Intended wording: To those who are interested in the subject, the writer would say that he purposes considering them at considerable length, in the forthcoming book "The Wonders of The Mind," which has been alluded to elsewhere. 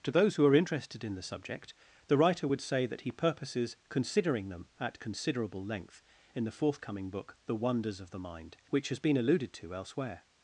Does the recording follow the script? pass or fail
pass